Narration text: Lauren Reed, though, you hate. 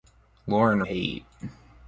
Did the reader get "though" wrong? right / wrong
wrong